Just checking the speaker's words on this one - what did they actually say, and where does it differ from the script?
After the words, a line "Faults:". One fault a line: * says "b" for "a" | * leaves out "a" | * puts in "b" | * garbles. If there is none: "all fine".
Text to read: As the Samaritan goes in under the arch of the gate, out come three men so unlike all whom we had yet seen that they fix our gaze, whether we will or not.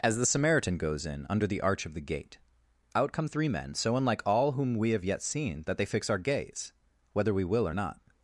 As the Samaritan goes in under the arch of the gate, out come three men so unlike all whom we have yet seen that they fix our gaze, whether we will or not.
Faults:
* says "have" for "had"